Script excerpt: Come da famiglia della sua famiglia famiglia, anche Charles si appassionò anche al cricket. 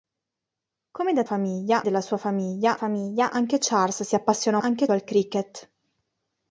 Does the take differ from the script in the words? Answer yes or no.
no